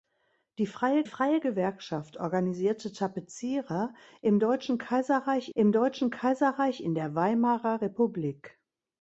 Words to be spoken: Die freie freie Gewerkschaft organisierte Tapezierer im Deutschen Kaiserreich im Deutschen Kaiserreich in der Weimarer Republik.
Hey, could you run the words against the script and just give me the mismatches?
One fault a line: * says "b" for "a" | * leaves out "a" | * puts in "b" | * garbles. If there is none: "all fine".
all fine